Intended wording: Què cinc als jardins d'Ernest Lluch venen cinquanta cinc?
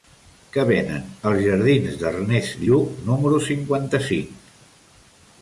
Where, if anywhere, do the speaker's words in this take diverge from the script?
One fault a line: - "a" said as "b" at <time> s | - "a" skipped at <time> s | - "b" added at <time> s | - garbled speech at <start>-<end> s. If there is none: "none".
- "cinc" said as "venen" at 0.7 s
- "venen" said as "número" at 3.1 s